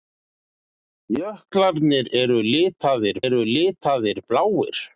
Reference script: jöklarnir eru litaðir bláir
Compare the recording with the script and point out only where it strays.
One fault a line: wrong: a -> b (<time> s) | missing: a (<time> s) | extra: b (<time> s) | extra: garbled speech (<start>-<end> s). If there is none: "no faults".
extra: eru litaðir (3.3 s)